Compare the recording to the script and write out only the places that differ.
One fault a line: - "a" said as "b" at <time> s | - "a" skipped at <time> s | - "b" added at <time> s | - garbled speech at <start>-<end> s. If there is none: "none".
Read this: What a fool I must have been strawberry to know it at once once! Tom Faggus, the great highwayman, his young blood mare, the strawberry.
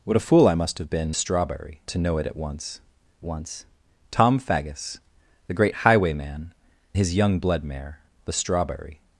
none